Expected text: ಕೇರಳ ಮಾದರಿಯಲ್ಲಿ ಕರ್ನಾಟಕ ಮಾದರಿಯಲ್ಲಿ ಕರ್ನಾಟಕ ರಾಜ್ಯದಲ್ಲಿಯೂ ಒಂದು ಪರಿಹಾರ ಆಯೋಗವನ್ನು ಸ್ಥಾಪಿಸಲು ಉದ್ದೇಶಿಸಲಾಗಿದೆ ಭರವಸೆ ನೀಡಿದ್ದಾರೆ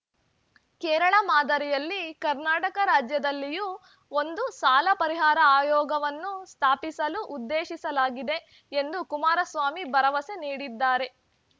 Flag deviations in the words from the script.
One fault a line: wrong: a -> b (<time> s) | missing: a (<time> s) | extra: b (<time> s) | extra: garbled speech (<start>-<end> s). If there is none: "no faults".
missing: ಮಾದರಿಯಲ್ಲಿ ಕರ್ನಾಟಕ (2.8 s)
extra: ಸಾಲ (4.6 s)
extra: ಎಂದು ಕುಮಾರಸ್ವಾಮಿ (8.7 s)